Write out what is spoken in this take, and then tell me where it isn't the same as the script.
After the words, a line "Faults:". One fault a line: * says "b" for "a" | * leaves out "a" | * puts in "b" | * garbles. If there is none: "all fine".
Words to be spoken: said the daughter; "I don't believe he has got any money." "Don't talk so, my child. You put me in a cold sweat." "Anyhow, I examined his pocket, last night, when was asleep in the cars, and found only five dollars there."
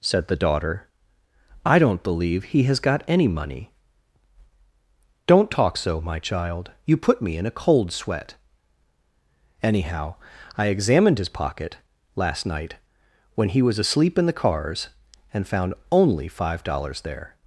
said the daughter; "I don't believe he has got any money." "Don't talk so, my child. You put me in a cold sweat." "Anyhow, I examined his pocket, last night, when he was asleep in the cars, and found only five dollars there."
Faults:
* puts in "he"